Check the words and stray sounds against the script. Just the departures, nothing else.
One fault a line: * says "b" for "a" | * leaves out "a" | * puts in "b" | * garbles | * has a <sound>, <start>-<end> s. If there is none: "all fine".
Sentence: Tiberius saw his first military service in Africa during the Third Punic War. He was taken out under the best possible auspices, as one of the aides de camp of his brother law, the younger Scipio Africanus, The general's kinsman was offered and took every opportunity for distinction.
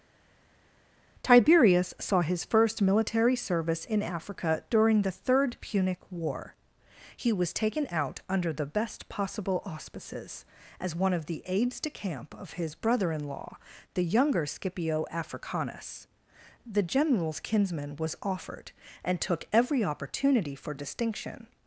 * puts in "in"